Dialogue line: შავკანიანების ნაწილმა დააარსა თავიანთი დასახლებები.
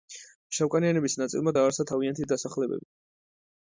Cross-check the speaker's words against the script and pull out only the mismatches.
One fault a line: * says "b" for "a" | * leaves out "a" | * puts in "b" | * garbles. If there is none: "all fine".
all fine